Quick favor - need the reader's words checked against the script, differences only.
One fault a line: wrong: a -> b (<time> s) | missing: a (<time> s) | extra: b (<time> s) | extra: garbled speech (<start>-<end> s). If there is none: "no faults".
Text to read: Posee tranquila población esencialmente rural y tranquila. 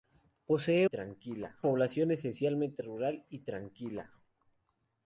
no faults